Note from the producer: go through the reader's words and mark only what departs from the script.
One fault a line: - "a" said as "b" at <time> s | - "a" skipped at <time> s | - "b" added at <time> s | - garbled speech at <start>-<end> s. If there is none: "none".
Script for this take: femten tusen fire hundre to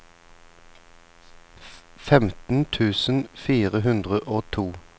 - "og" added at 4.2 s